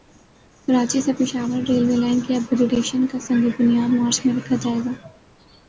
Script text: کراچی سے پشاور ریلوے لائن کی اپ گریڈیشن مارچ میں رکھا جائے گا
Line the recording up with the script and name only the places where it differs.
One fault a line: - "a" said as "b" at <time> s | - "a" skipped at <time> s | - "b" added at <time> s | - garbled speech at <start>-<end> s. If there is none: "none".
- "کا سنگ بنیاد" added at 3.1 s